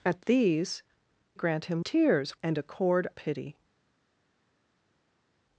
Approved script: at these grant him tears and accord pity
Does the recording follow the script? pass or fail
pass